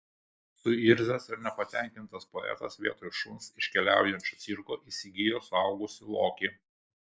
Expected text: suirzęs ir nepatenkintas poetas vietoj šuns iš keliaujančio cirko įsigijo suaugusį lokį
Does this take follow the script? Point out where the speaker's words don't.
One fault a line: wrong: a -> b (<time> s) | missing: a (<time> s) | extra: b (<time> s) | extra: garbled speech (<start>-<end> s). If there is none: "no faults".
no faults